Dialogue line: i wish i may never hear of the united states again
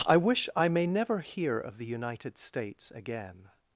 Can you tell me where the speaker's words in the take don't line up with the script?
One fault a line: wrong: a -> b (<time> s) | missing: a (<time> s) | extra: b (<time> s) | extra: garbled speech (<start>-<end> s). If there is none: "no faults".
no faults